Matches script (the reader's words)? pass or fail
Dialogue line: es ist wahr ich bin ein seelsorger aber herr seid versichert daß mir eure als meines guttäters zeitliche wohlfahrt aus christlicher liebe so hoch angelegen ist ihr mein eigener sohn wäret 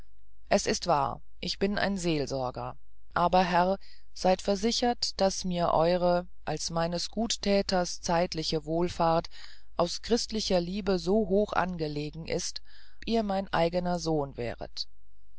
pass